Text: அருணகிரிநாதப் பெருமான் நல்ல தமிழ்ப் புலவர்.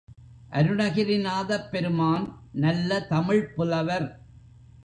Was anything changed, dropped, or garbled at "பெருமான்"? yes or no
no